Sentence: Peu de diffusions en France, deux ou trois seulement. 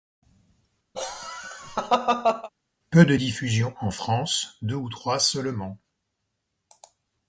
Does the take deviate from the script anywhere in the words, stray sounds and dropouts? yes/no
yes